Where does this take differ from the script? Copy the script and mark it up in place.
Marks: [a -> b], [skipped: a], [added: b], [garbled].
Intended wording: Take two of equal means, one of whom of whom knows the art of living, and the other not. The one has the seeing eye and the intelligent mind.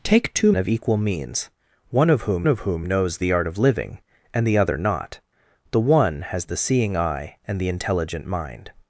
Take two of equal means, one of whom of whom knows the art of living, and the other not. The one has the seeing eye and the intelligent mind.